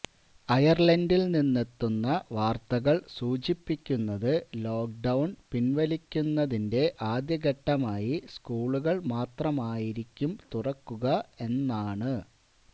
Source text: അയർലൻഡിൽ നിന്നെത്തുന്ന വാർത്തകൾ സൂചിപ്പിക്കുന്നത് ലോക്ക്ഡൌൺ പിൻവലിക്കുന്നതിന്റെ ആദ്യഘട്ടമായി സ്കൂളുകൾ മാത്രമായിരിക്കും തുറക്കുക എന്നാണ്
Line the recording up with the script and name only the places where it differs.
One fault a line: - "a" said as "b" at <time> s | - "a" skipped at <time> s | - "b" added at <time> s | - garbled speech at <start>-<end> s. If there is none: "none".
none